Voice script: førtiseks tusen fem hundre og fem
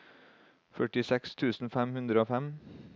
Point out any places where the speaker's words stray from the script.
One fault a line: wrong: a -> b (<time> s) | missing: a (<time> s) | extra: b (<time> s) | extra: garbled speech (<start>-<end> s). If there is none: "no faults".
no faults